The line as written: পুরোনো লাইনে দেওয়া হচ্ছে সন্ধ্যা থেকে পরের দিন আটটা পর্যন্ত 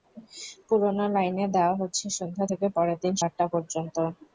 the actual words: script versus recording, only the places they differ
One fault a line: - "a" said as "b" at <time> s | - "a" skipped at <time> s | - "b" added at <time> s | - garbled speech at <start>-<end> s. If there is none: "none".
none